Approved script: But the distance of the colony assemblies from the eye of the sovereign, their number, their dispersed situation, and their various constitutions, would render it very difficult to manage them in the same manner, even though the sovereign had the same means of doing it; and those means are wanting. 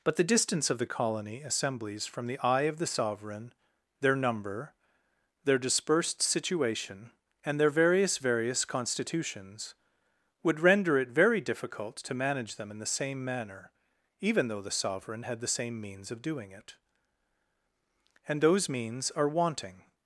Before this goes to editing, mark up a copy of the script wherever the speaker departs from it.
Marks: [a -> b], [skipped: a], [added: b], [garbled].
But the distance of the colony assemblies from the eye of the sovereign, their number, their dispersed situation, and their various [added: various] constitutions, would render it very difficult to manage them in the same manner, even though the sovereign had the same means of doing it; and those means are wanting.